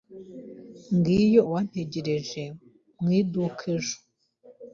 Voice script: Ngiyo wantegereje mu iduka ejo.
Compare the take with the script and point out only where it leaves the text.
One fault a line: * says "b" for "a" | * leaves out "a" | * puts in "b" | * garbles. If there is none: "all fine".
all fine